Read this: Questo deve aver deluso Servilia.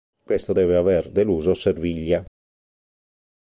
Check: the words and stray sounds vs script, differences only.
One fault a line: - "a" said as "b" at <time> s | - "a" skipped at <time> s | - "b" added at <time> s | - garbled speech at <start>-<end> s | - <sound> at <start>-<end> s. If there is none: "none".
none